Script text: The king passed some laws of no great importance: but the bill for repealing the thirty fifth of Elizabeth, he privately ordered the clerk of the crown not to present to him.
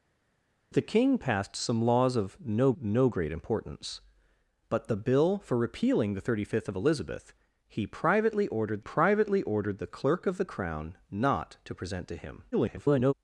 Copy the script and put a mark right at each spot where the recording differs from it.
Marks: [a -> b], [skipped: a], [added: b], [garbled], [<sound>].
The king passed some laws of no [added: no] great importance: but the bill for repealing the thirty fifth of Elizabeth, he privately ordered [added: privately ordered] the clerk of the crown not to present to him. [garbled]